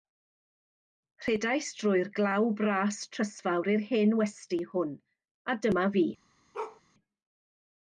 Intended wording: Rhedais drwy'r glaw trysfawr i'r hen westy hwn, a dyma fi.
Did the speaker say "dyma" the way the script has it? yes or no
yes